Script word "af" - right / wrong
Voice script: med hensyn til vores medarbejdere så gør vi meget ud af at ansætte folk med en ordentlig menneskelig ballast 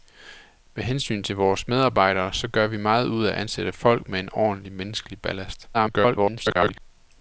right